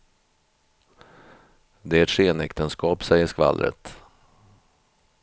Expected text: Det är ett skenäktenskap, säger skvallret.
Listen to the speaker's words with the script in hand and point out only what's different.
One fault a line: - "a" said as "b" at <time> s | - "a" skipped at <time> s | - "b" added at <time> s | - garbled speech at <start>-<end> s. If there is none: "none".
none